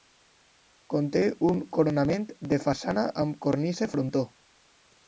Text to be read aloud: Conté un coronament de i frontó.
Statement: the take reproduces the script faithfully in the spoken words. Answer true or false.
false